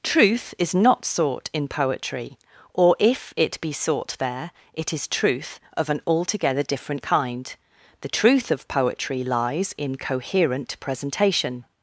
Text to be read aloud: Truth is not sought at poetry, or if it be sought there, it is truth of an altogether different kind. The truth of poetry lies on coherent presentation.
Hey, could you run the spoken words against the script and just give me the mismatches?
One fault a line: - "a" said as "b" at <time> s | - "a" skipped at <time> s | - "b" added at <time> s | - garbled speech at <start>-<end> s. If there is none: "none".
- "at" said as "in" at 1.5 s
- "on" said as "in" at 9.8 s